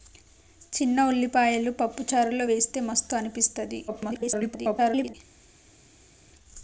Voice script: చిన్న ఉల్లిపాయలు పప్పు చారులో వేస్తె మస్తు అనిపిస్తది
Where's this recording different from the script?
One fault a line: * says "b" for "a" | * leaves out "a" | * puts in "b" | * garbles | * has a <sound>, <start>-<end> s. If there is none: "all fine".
* garbles